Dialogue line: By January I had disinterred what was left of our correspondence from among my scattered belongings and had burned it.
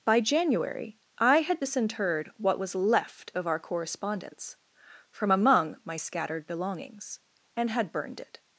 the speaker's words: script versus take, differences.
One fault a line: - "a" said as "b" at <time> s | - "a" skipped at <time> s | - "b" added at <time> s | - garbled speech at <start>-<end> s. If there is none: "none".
none